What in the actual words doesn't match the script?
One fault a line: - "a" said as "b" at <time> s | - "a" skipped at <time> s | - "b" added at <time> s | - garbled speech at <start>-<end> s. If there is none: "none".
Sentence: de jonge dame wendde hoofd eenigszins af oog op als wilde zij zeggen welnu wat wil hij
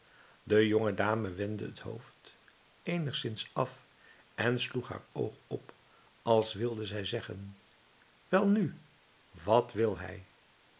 - "het" added at 1.6 s
- "en sloeg haar" added at 4.3 s